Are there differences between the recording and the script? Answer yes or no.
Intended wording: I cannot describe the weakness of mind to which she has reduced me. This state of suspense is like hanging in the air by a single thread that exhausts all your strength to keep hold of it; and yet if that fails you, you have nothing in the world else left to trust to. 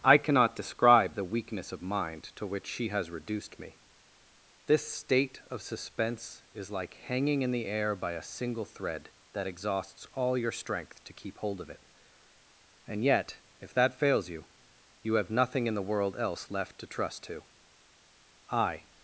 yes